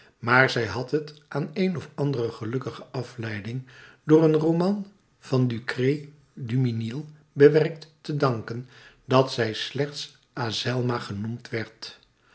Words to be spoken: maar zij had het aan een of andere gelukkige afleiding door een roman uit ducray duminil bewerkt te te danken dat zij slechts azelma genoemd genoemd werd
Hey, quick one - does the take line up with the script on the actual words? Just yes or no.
no